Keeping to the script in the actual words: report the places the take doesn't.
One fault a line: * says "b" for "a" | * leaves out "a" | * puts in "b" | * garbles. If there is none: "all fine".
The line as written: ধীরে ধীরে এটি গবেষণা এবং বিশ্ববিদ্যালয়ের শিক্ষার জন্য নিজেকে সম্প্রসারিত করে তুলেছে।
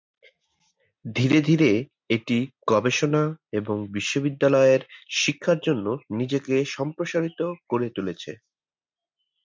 all fine